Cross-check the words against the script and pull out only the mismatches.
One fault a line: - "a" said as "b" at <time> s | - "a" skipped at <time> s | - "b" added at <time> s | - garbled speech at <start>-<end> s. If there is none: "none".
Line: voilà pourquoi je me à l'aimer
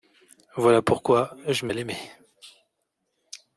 none